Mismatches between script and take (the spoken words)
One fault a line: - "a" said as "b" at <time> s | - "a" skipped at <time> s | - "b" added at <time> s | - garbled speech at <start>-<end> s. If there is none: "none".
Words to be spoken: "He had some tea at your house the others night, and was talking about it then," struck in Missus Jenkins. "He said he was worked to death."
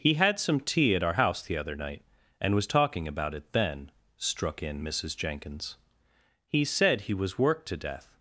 - "your" said as "our" at 1.0 s
- "others" said as "other" at 1.6 s